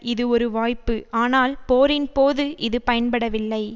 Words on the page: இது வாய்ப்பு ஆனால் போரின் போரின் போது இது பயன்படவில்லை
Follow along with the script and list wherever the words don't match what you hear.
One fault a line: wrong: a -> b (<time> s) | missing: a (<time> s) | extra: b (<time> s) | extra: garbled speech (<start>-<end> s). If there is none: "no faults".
extra: ஒரு (0.3 s)
missing: போரின் (2.1 s)